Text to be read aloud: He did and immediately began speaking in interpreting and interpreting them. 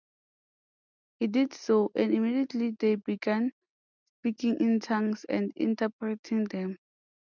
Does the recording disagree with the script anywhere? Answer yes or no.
yes